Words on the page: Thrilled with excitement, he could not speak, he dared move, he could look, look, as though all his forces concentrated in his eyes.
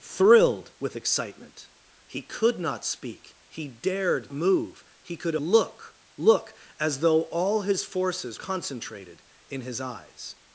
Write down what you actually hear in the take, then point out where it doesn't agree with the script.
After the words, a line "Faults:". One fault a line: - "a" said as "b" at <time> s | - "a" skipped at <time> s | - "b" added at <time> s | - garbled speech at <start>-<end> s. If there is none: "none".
Thrilled with excitement, he could not speak, he dared move, he could look, look, as though all his forces concentrated in his eyes.
Faults:
none